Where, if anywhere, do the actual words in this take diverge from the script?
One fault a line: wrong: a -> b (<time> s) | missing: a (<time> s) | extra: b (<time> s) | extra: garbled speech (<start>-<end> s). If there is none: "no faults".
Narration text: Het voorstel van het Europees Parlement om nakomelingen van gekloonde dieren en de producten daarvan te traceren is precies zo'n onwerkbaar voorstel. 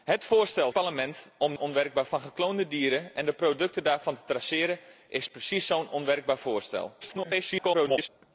missing: van het Europees (0.7 s)
wrong: nakomelingen -> onwerkbaar (1.6 s)
extra: garbled speech (7.0-8.1 s)